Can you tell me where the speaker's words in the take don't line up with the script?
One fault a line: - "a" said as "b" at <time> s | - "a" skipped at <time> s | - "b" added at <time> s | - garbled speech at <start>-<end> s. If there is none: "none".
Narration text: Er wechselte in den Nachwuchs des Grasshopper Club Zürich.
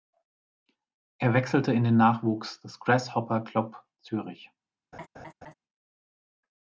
none